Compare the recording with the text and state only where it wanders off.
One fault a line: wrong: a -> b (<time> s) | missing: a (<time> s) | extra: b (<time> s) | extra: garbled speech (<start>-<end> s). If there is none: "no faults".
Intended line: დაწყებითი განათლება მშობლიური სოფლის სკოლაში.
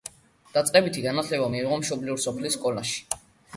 extra: მიიღო (1.5 s)